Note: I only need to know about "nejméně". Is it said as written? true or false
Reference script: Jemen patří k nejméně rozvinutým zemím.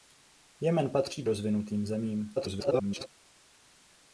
false